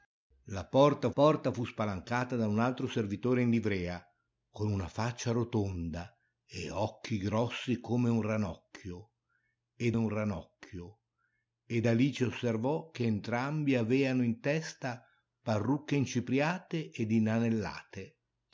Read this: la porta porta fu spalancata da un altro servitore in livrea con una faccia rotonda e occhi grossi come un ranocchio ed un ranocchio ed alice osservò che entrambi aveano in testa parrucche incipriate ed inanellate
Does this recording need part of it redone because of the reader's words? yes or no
no